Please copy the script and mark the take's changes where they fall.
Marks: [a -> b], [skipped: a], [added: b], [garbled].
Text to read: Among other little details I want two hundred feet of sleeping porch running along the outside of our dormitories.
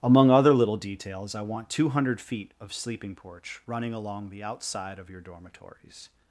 Among other little details I want two hundred feet of sleeping porch running along the outside of [our -> your] dormitories.